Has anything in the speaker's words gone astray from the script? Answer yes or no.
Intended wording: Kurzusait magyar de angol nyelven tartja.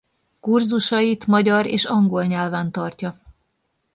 yes